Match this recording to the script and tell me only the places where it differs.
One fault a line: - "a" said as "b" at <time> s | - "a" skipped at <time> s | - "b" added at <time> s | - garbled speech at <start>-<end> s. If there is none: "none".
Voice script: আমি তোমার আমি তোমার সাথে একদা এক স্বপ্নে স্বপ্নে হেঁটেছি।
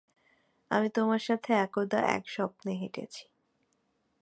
- "আমি তোমার" skipped at 1.2 s
- "স্বপ্নে" skipped at 2.7 s